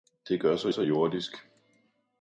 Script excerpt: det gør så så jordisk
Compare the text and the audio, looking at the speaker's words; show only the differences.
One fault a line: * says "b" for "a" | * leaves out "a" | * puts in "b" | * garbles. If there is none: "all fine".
all fine